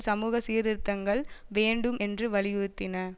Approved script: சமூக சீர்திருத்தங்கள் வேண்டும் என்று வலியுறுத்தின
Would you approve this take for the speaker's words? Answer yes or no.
yes